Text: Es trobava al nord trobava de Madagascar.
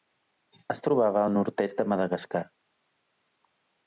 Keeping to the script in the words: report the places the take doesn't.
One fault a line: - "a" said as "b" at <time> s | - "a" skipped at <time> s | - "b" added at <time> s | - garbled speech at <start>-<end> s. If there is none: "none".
- "trobava" said as "est" at 1.6 s